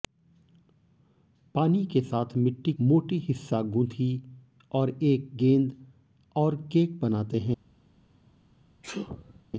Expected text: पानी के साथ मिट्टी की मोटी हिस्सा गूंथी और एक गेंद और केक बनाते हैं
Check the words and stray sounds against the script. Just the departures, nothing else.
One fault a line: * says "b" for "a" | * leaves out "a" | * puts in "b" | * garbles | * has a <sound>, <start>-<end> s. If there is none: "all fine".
* leaves out "की"
* has a sneeze, 8.8-9.4 s